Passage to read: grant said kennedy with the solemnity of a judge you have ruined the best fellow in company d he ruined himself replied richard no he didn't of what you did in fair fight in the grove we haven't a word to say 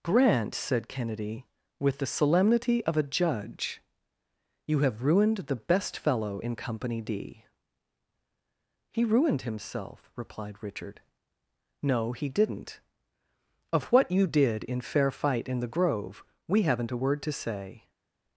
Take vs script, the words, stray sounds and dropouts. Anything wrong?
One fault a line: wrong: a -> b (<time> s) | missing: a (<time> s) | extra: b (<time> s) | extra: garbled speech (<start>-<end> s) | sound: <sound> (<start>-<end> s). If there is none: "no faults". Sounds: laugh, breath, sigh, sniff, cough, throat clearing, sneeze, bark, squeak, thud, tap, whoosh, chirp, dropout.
no faults